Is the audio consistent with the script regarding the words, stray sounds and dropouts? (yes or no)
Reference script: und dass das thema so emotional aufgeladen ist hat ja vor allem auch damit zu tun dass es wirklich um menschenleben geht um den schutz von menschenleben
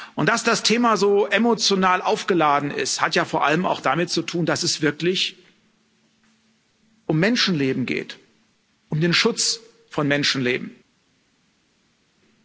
yes